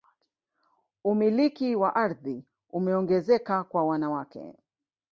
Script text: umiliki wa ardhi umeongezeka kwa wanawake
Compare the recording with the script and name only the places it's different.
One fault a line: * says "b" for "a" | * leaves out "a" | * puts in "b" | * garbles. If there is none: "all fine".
all fine